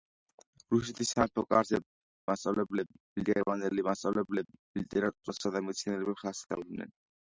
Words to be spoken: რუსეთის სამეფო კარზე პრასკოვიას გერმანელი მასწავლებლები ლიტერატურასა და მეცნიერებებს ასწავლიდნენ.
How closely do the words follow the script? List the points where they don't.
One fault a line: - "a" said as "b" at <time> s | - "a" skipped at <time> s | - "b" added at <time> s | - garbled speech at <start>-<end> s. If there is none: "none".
- "პრასკოვიას" said as "მასწავლებლები" at 2.3 s